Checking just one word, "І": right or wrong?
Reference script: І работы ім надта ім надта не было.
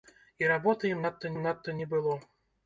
right